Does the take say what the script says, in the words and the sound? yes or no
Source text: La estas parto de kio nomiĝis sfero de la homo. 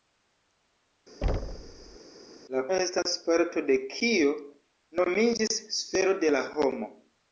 no